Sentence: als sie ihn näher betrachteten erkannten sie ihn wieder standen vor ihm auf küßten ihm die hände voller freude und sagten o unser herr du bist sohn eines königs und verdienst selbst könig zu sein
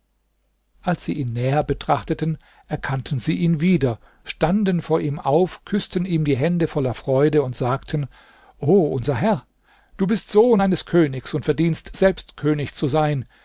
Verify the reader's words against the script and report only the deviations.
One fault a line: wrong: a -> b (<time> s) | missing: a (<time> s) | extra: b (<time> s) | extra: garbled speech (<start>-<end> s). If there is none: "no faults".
no faults